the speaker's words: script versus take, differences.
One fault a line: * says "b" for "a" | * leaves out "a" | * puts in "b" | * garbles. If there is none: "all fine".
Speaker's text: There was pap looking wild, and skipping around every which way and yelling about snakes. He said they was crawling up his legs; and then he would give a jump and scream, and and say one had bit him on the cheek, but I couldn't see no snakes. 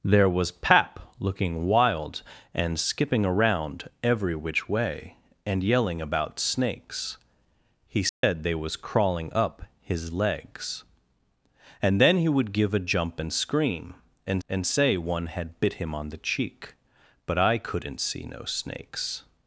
all fine